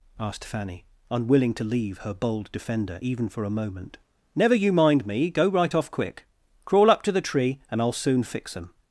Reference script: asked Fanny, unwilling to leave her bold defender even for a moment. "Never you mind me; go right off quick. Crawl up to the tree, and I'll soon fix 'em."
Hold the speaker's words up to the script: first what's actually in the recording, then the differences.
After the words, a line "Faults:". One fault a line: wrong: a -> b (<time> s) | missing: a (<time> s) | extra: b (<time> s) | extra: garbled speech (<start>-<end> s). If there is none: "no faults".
asked Fanny, unwilling to leave her bold defender even for a moment. "Never you mind me; go right off quick. Crawl up to the tree, and I'll soon fix 'em."
Faults:
no faults